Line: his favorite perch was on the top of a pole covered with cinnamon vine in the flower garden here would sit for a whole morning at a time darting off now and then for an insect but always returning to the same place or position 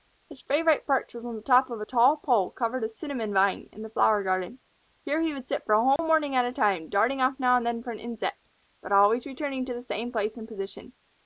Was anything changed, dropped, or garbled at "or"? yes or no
yes